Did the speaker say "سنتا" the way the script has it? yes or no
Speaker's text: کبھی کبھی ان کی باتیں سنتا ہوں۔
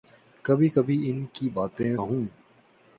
no